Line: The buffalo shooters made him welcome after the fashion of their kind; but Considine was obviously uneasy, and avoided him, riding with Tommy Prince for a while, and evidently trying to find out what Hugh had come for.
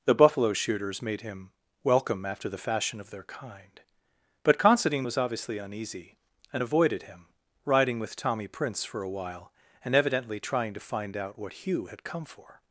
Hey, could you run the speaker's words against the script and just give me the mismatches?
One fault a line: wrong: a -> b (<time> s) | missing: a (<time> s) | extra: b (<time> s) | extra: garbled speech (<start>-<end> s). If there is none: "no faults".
no faults